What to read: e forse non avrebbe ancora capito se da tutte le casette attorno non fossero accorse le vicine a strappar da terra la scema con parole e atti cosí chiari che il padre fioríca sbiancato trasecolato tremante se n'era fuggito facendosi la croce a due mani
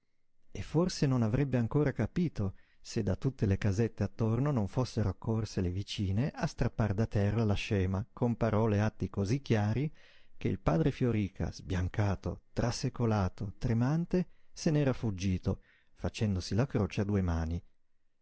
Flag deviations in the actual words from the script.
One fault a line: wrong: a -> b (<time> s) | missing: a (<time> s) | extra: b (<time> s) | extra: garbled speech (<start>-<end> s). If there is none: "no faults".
no faults